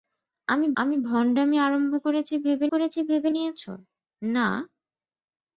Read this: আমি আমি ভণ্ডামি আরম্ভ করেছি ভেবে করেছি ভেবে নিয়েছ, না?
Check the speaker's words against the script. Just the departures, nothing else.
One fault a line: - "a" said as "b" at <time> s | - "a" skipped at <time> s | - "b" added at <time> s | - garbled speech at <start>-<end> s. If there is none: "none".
none